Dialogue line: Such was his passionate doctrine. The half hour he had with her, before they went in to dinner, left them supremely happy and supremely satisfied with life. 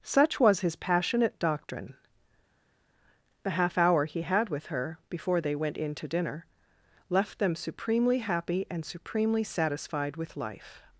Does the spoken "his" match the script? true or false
true